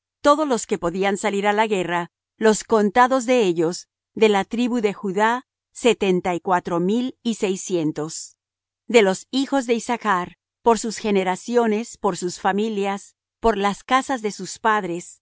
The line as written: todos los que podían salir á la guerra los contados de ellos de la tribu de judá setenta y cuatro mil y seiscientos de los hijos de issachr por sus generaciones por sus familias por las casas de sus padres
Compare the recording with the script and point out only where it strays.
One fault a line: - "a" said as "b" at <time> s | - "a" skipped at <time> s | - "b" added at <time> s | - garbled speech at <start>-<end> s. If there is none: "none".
none